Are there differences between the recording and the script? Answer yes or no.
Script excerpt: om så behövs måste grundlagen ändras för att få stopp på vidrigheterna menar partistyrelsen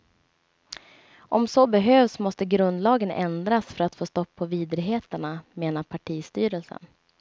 no